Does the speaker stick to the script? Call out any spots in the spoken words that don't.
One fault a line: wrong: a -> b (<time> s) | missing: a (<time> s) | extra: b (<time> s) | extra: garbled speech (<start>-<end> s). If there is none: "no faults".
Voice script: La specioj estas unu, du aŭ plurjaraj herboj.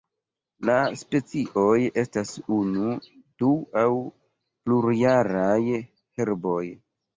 no faults